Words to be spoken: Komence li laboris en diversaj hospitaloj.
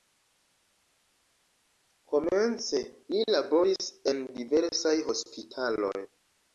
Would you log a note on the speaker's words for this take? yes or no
no